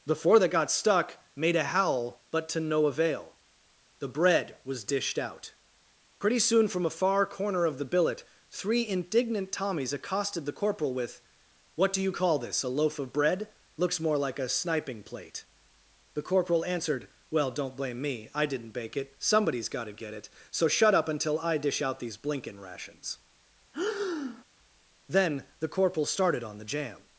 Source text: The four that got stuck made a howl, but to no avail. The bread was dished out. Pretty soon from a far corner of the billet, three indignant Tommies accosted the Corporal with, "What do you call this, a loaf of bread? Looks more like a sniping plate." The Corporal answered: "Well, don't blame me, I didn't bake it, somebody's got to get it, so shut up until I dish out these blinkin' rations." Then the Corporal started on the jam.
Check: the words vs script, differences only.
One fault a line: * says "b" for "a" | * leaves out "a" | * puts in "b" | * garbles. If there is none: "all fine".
all fine